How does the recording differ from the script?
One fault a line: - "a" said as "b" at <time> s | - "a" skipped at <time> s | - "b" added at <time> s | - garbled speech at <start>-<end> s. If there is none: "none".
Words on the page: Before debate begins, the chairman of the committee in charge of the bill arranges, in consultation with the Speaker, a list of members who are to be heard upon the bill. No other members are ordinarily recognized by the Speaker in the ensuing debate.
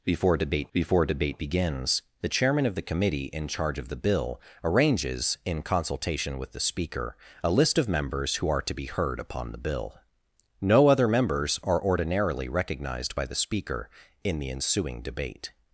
- "before debate" added at 0.7 s